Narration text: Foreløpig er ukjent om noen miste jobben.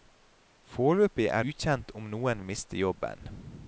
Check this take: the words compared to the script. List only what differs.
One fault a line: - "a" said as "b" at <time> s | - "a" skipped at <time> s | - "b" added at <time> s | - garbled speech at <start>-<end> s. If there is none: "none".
none